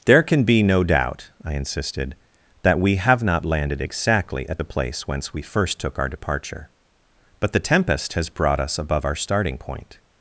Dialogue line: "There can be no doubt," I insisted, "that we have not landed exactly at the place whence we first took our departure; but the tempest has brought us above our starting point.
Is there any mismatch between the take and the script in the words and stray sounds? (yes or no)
no